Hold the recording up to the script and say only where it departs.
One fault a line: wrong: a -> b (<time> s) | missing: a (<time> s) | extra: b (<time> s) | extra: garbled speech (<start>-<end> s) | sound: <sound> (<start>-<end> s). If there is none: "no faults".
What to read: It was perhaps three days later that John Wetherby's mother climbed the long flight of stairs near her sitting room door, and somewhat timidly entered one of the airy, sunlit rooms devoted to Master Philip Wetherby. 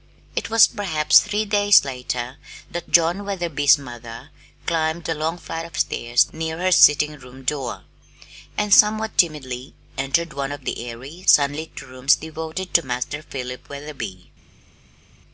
no faults